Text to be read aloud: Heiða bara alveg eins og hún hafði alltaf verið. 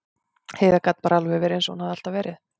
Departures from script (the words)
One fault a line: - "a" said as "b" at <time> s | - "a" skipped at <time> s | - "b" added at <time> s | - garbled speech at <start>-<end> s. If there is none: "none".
- "gat" added at 0.9 s
- "verið" added at 1.4 s